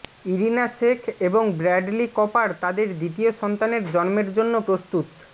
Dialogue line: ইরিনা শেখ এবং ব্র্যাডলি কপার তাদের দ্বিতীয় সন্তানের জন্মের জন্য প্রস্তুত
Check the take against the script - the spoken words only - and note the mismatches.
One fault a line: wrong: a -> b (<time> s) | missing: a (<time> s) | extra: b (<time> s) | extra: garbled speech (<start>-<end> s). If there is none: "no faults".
no faults